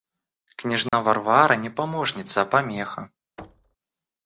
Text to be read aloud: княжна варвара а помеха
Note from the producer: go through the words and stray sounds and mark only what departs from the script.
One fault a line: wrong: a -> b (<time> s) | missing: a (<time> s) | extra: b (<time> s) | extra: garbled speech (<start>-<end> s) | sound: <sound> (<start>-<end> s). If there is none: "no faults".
sound: dropout (0.9-0.9 s)
extra: не помощница (1.6 s)
sound: thud (3.4-3.8 s)